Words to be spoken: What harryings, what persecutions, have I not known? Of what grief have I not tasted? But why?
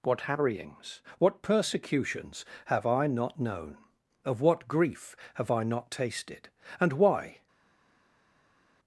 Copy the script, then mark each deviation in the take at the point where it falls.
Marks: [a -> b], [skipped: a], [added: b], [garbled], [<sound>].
What harryings, what persecutions, have I not known? Of what grief have I not tasted? [But -> And] why?